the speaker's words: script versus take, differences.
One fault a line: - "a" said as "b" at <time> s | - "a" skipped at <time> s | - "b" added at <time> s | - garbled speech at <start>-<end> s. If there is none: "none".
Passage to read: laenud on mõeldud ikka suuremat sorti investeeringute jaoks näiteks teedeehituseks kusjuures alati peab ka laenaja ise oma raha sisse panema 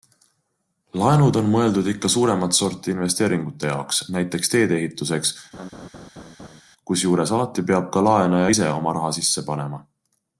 none